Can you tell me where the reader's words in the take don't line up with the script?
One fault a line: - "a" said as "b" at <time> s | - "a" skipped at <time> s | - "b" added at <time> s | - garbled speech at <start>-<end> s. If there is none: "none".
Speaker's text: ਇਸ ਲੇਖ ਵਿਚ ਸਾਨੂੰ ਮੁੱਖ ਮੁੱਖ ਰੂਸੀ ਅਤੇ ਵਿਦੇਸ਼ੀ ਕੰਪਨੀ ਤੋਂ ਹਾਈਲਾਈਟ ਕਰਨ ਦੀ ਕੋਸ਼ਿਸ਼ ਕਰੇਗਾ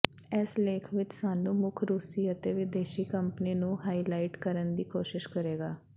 - "ਮੁੱਖ" skipped at 1.8 s
- "ਤੋਂ" said as "ਨੂੰ" at 3.5 s